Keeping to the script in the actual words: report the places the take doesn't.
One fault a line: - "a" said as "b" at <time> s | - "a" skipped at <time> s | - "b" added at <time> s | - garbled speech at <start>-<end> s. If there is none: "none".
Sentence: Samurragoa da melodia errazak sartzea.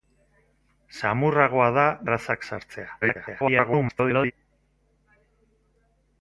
- "melodia" skipped at 1.8 s
- garbled speech at 3.0-4.3 s